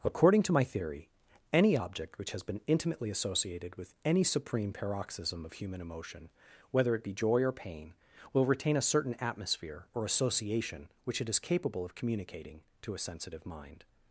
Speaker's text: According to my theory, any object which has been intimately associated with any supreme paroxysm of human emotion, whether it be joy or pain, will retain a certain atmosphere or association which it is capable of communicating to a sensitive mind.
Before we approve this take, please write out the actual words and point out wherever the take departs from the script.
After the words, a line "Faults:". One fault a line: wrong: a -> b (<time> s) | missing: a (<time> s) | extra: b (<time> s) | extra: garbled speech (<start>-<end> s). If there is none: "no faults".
According to my theory, any object which has been intimately associated with any supreme paroxysm of human emotion, whether it be joy or pain, will retain a certain atmosphere or association which it is capable of communicating to a sensitive mind.
Faults:
no faults